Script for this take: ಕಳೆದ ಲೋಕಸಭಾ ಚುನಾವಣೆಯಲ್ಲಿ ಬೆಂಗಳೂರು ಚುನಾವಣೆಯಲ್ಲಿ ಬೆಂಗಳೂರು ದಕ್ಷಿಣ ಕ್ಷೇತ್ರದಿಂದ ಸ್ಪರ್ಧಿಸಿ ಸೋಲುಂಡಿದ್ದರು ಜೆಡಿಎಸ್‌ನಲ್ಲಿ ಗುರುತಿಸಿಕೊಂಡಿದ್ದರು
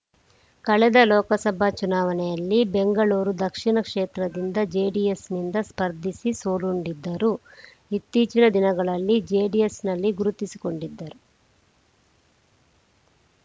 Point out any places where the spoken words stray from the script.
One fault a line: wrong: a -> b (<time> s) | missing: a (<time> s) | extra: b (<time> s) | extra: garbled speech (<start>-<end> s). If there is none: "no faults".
missing: ಚುನಾವಣೆಯಲ್ಲಿ ಬೆಂಗಳೂರು (3.4 s)
extra: ಜೆಡಿಎಸ್‌ನಿಂದ (4.7 s)
extra: ಇತ್ತೀಚಿನ ದಿನಗಳಲ್ಲಿ (7.9 s)